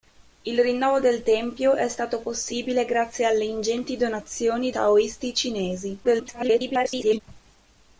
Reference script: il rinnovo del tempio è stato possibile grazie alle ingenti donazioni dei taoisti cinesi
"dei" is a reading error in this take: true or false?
true